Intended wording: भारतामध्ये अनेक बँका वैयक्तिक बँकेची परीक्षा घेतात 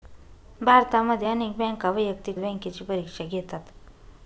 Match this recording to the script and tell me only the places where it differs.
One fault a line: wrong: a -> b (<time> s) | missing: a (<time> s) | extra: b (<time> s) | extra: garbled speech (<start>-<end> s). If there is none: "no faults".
no faults